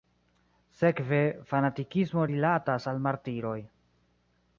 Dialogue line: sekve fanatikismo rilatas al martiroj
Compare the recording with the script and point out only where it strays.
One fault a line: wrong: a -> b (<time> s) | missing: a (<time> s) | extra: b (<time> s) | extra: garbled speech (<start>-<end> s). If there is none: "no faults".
no faults